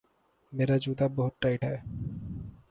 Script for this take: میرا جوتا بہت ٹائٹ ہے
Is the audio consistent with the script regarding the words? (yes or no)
yes